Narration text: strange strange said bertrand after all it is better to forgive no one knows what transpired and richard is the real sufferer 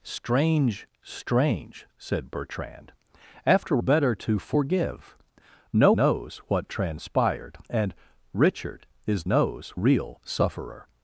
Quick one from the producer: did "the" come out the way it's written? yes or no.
no